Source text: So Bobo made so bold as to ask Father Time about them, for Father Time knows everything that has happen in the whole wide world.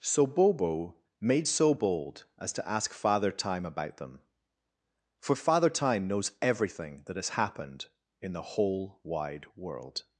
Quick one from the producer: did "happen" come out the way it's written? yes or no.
no